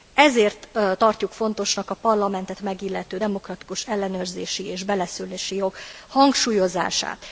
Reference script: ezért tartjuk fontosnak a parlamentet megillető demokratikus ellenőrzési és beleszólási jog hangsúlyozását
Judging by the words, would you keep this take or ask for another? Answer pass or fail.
pass